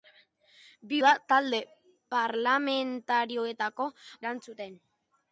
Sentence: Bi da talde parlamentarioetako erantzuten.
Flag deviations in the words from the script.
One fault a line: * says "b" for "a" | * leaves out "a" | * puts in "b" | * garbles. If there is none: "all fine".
all fine